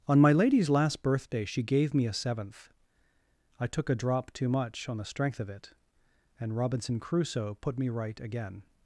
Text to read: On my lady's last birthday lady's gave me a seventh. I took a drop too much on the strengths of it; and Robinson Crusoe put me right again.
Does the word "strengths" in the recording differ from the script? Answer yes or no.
yes